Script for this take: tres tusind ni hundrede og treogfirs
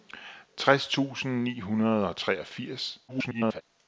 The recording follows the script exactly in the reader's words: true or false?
false